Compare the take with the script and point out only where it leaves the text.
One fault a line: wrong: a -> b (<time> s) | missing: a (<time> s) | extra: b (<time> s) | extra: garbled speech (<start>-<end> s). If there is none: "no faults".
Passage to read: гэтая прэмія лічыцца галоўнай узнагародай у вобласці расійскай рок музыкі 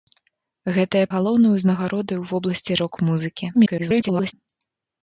missing: прэмія лічыцца (1.0 s)
missing: расійскай (2.8 s)
extra: garbled speech (3.5-4.3 s)